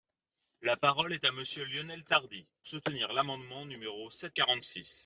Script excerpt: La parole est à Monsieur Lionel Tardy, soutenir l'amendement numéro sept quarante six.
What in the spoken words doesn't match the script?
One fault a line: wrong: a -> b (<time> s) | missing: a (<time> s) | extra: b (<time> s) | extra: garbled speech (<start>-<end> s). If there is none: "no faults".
no faults